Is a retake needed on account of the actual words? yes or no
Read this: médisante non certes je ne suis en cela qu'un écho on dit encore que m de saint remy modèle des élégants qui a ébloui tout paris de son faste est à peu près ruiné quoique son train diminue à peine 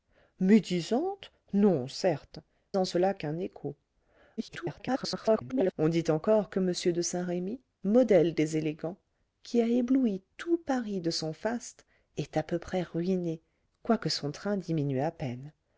yes